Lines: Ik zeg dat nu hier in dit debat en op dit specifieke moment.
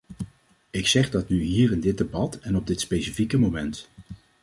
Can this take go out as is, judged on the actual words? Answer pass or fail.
pass